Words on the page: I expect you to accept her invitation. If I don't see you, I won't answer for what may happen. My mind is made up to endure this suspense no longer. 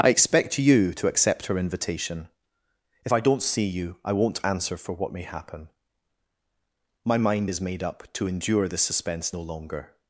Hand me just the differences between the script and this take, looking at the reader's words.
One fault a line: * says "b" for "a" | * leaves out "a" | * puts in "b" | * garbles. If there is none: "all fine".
all fine